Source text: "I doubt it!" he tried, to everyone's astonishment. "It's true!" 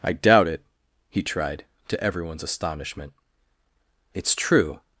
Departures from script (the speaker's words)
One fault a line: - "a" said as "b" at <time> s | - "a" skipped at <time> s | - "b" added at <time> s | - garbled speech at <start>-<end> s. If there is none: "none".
none